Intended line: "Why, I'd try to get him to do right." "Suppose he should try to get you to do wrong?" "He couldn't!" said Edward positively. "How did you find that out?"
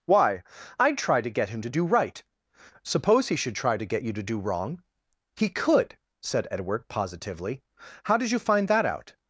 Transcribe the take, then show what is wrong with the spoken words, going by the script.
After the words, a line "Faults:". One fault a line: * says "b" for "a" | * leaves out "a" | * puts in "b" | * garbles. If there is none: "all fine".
"Why, I'd try to get him to do right." "Suppose he should try to get you to do wrong?" "He could!" said Edward positively. "How did you find that out?"
Faults:
* says "could" for "couldn't"